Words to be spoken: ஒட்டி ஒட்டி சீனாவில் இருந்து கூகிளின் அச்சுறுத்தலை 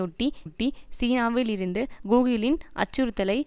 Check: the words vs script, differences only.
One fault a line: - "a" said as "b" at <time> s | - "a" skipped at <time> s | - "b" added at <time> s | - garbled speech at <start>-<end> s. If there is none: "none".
none